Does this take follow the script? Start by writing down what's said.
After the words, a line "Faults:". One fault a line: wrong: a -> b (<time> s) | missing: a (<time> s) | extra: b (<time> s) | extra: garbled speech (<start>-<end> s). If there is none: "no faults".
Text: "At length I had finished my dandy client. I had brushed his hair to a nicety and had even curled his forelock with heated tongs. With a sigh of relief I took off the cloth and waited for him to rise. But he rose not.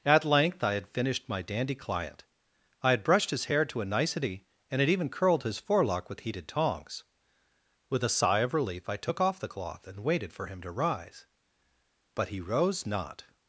"At length I had finished my dandy client. I had brushed his hair to a nicety and had even curled his forelock with heated tongs. With a sigh of relief I took off the cloth and waited for him to rise. But he rose not.
Faults:
no faults